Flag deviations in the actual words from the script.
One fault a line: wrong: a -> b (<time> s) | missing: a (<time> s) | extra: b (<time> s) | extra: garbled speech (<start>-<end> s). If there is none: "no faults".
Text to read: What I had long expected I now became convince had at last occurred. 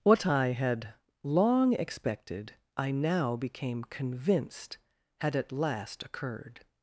wrong: convince -> convinced (3.8 s)